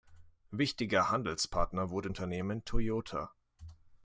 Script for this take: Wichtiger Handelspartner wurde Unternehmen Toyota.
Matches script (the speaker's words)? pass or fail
pass